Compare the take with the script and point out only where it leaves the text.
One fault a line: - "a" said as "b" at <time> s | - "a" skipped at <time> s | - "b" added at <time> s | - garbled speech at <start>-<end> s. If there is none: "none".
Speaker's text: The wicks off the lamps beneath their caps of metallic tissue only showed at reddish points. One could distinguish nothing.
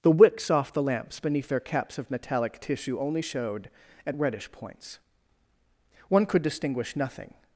none